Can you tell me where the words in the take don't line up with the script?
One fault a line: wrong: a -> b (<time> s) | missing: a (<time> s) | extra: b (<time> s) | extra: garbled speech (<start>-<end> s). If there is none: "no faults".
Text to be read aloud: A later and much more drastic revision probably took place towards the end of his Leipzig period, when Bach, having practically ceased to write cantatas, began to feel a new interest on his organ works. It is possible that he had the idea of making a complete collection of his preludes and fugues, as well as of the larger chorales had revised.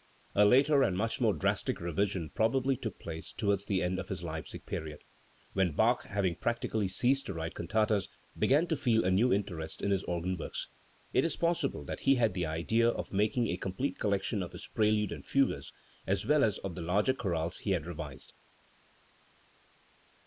wrong: on -> in (9.8 s)
extra: he (17.6 s)